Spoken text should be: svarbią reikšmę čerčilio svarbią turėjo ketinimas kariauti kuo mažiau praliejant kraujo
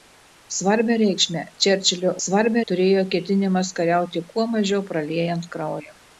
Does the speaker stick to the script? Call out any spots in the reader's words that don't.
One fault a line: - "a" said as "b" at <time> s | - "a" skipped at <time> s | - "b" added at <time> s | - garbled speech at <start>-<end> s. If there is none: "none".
none